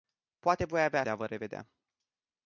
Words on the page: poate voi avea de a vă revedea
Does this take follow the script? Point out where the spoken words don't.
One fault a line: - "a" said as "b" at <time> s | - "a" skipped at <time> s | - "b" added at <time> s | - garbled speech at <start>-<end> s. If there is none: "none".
none